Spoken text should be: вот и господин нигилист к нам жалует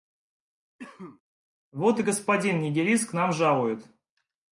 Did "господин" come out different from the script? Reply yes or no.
no